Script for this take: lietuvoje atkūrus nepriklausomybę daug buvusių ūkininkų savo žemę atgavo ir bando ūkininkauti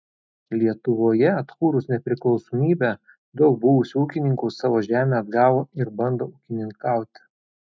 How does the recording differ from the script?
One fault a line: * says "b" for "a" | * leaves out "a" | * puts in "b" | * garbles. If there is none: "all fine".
all fine